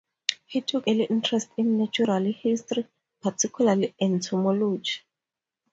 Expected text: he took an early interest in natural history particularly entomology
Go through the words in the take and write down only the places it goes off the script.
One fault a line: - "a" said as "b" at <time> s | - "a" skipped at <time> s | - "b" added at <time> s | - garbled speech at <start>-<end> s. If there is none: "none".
- "an" skipped at 0.9 s